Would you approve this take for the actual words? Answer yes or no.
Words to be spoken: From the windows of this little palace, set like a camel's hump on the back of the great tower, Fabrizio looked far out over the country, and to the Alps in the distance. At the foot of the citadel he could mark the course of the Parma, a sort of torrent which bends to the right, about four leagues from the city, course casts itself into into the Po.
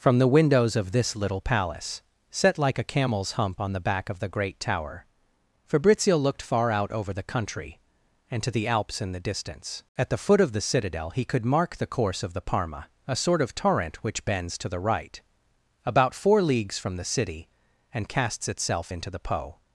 no